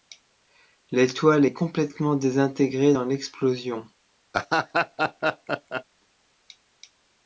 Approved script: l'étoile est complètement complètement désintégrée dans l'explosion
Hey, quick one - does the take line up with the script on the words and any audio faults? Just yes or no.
no